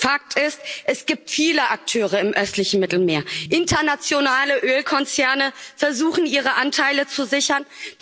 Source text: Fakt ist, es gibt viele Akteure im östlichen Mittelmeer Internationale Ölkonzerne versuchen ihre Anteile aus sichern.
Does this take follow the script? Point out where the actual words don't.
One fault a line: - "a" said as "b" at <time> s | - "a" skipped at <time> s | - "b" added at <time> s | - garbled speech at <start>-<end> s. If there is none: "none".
- "aus" said as "zu" at 7.1 s